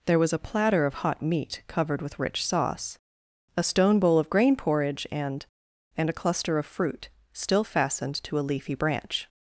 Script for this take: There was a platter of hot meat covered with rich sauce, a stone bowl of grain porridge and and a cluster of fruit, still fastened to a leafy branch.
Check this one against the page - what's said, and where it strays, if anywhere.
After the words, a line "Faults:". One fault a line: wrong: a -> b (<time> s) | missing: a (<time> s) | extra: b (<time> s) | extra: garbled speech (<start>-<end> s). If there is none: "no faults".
There was a platter of hot meat covered with rich sauce, a stone bowl of grain porridge and and a cluster of fruit, still fastened to a leafy branch.
Faults:
no faults